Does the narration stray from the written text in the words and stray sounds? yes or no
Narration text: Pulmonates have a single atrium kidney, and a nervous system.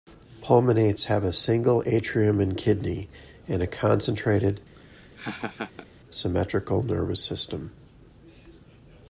yes